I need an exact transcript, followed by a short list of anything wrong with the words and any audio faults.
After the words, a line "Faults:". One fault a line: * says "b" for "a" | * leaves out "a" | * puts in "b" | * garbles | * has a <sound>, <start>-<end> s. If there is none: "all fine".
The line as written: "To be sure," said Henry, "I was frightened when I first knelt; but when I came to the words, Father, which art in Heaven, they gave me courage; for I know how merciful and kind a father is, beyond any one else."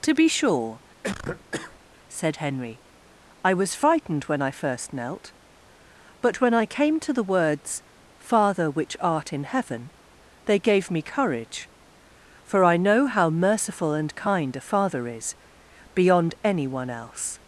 "To be sure," said Henry, "I was frightened when I first knelt; but when I came to the words, Father, which art in Heaven, they gave me courage; for I know how merciful and kind a father is, beyond any one else."
Faults:
* has a cough, 1.0-1.8 s